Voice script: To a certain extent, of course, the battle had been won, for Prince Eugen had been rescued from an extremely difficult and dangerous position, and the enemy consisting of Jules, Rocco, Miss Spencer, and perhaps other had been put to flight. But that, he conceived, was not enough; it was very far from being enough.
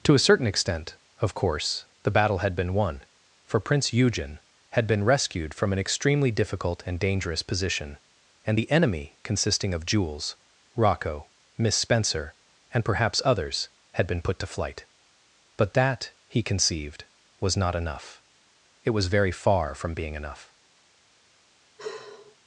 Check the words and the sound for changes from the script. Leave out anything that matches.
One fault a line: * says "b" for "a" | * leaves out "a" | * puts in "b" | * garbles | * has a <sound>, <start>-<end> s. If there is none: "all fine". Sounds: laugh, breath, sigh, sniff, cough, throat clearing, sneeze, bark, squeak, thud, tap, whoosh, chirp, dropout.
* says "others" for "other"
* has a sigh, 21.8-22.4 s